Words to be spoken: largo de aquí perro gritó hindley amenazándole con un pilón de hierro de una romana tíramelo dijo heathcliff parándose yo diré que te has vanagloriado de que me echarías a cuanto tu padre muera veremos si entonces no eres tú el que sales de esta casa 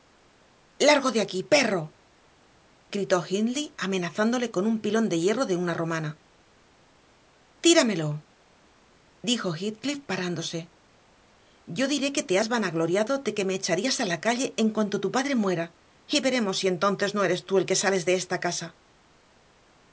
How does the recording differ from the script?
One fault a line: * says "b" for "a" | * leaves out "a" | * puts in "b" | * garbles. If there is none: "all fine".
* puts in "la calle en"
* puts in "y"